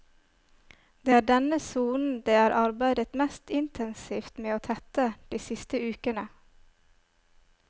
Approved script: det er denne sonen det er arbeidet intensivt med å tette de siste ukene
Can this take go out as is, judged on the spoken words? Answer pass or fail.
fail